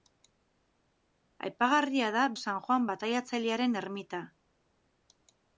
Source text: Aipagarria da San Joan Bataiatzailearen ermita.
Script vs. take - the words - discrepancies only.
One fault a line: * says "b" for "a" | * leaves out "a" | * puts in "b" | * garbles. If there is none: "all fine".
all fine